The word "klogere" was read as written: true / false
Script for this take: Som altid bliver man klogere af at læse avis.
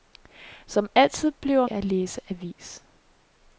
false